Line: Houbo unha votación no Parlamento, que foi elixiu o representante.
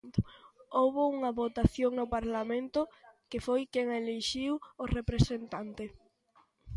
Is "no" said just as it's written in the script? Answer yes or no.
yes